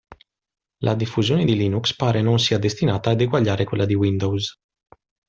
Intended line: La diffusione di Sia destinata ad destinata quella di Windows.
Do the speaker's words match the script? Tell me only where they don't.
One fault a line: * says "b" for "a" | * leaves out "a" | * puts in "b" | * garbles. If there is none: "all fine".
* puts in "Linux pare non"
* says "eguagliare" for "destinata"